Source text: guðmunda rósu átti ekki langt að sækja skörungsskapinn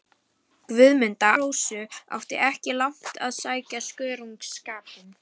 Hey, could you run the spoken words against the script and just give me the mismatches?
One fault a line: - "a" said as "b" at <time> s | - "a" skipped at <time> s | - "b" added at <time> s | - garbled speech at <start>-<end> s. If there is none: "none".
none